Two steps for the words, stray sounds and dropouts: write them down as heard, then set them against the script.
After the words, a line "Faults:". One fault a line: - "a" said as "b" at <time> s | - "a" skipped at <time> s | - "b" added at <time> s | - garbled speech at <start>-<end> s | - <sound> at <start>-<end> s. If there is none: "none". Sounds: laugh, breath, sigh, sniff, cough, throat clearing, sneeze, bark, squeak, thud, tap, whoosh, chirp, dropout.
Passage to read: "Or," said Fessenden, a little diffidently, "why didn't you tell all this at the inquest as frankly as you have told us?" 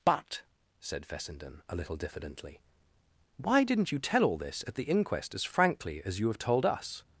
"But," said Fessenden, a little diffidently, "why didn't you tell all this at the inquest as frankly as you have told us?"
Faults:
- "Or" said as "But" at 0.0 s